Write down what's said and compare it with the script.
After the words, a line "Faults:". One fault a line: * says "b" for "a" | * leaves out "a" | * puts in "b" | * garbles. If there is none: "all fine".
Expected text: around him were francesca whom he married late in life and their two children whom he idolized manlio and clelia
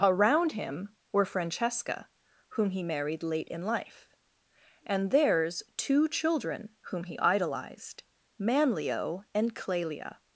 around him were francesca whom he married late in life and theirs two children whom he idolized manlio and clelia
Faults:
* says "theirs" for "their"